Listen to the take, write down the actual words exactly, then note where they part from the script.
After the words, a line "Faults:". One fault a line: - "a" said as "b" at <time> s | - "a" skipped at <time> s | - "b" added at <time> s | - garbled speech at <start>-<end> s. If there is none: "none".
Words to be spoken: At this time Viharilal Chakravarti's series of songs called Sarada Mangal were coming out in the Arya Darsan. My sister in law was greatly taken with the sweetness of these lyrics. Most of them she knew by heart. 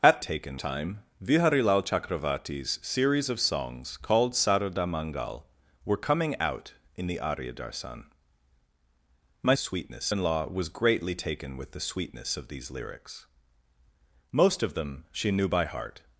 At taken time Viharilal Chakravarti's series of songs called Sarada Mangal were coming out in the Arya Darsan. My sweetness in law was greatly taken with the sweetness of these lyrics. Most of them she knew by heart.
Faults:
- "this" said as "taken" at 0.2 s
- "sister" said as "sweetness" at 9.6 s